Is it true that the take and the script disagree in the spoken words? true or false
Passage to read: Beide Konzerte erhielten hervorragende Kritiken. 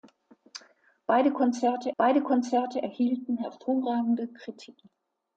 true